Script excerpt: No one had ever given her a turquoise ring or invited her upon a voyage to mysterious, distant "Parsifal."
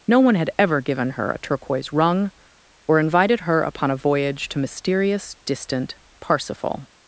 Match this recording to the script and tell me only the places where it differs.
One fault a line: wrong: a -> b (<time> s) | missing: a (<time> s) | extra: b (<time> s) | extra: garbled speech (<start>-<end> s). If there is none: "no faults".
wrong: ring -> rung (1.9 s)